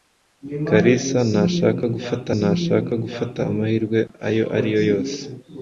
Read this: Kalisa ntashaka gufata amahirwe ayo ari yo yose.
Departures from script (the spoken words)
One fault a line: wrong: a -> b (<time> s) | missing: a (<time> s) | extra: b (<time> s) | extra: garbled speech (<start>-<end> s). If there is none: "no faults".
extra: ntashaka gufata (2.4 s)